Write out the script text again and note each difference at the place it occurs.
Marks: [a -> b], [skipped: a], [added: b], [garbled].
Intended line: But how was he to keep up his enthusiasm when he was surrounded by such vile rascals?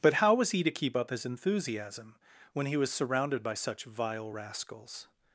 But how was he to keep up his enthusiasm when he was surrounded by such vile rascals?